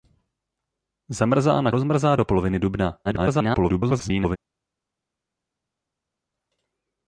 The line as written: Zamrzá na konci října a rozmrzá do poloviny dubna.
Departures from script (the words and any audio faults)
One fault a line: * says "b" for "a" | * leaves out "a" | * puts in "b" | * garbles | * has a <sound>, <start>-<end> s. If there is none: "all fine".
* leaves out "konci října a"
* garbles